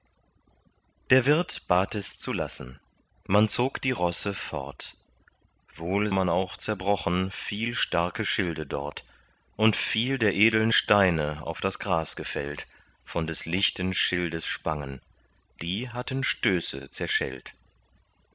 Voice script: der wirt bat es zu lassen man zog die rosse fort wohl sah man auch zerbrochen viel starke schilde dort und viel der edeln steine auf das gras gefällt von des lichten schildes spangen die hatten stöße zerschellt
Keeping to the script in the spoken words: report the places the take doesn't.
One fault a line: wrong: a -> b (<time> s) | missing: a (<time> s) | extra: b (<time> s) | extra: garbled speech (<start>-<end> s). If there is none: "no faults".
missing: sah (6.1 s)